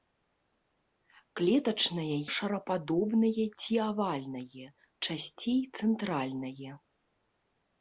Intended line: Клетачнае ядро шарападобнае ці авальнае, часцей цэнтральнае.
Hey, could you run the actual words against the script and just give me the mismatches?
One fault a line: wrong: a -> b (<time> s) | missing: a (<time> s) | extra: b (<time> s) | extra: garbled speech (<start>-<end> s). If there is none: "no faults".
missing: ядро (2.1 s)